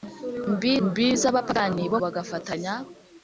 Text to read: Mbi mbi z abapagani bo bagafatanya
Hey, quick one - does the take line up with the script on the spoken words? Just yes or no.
yes